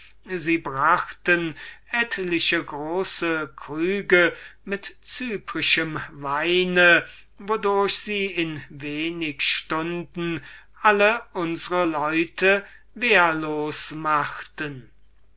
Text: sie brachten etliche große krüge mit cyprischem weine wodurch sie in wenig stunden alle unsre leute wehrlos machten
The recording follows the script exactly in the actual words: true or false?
true